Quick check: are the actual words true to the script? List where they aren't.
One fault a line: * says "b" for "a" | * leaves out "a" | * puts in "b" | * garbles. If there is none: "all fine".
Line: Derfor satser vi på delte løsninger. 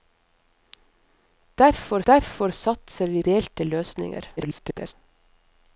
* puts in "derfor"
* leaves out "på"
* garbles